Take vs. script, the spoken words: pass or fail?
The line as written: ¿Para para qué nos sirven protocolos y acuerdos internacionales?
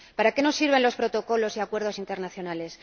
fail